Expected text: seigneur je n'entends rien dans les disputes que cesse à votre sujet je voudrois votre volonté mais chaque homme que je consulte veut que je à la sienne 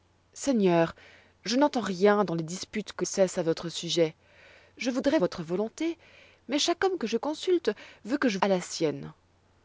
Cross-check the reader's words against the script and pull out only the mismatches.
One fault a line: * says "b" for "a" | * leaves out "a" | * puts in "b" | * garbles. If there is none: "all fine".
all fine